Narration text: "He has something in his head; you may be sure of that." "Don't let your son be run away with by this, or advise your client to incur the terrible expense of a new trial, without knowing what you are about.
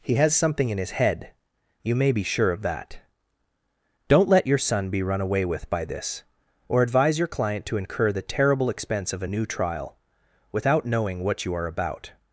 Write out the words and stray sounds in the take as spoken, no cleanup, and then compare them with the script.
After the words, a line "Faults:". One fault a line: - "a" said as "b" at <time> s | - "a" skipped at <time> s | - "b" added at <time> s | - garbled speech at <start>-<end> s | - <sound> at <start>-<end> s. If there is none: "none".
"He has something in his head; you may be sure of that." "Don't let your son be run away with by this, or advise your client to incur the terrible expense of a new trial, without knowing what you are about.
Faults:
none